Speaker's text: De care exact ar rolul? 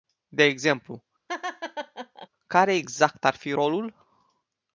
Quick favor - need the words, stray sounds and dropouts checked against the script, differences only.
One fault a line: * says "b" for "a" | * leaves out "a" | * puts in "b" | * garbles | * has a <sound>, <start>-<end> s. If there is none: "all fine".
* puts in "exemplu"
* has a laugh, 1.3-2.3 s
* puts in "fi"